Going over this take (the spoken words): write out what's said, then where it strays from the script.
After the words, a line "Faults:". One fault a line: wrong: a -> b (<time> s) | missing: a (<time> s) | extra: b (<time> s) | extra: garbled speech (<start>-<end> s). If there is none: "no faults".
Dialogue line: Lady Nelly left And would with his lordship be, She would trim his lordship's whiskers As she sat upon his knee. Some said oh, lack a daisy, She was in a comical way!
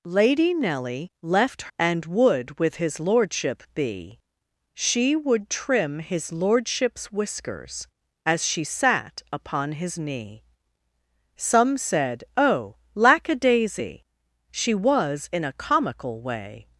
Lady Nelly left And would with his lordship be, She would trim his lordship's whiskers As she sat upon his knee. Some said oh, lack a daisy, She was in a comical way!
Faults:
no faults